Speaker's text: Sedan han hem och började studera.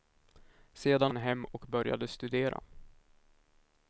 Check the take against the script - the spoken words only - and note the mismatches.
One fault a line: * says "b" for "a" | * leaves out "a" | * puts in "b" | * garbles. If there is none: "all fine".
all fine